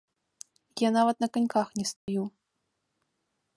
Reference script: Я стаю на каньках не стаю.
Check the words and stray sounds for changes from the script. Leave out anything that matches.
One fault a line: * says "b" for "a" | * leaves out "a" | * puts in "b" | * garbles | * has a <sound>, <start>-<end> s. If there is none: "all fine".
* says "нават" for "стаю"
* has a dropout, 2.0-2.1 s